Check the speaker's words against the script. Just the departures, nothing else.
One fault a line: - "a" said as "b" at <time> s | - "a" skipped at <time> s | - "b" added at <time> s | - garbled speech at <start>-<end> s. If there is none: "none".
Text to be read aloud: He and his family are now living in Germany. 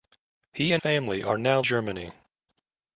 - "his" skipped at 0.8 s
- "living in" skipped at 1.6 s